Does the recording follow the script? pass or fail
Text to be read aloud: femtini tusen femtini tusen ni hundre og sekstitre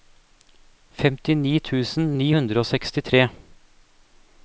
fail